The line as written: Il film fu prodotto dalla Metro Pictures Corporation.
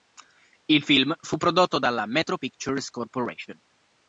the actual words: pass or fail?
pass